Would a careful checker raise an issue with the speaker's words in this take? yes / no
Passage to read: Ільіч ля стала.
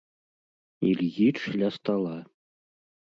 no